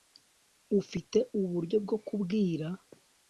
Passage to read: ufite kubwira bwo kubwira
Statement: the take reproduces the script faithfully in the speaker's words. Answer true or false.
false